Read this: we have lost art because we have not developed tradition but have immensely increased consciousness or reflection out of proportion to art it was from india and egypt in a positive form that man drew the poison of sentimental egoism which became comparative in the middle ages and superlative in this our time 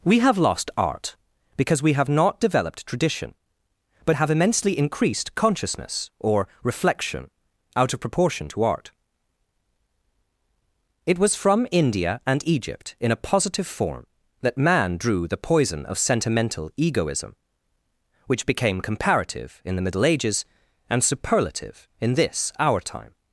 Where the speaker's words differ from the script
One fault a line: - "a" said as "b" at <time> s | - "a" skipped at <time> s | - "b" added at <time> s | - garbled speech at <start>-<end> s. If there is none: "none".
none